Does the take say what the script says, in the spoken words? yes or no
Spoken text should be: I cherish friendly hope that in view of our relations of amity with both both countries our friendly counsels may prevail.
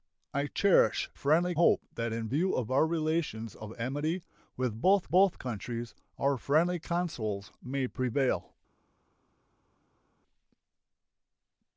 yes